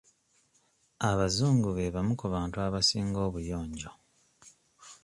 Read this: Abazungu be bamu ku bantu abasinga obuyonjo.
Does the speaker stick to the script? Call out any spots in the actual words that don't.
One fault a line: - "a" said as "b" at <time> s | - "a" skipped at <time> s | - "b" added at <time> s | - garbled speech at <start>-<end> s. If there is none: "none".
none